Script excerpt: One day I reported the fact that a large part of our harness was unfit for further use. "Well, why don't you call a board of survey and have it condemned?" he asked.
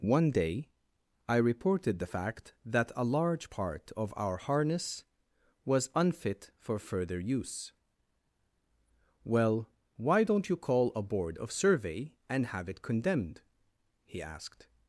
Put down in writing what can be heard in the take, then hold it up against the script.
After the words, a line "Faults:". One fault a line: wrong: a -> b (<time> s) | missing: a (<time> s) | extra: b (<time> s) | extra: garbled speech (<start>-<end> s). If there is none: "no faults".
One day I reported the fact that a large part of our harness was unfit for further use. "Well, why don't you call a board of survey and have it condemned?" he asked.
Faults:
no faults